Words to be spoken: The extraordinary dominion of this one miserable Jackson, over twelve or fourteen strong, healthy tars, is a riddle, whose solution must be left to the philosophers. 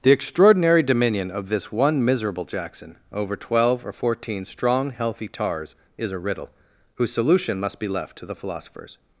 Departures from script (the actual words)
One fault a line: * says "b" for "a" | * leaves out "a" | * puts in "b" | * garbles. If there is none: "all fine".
all fine